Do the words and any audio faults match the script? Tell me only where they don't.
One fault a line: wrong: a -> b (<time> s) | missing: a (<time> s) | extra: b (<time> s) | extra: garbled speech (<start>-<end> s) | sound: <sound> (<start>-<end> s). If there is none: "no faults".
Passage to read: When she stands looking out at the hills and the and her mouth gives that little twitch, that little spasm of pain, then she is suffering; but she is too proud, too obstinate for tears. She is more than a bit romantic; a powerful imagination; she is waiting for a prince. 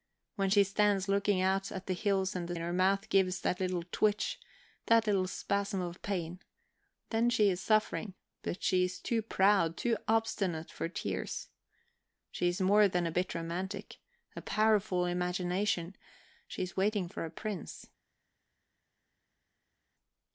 no faults